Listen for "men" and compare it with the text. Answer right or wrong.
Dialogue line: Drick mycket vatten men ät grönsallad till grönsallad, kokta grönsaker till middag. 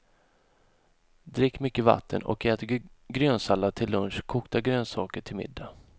wrong